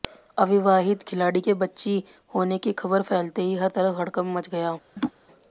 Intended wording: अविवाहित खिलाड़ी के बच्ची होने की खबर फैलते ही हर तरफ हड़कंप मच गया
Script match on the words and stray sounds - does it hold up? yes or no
no